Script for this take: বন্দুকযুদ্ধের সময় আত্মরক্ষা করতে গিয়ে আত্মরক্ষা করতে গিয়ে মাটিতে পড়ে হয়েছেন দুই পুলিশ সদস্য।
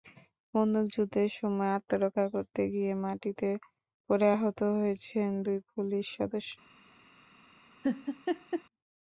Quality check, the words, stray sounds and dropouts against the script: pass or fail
fail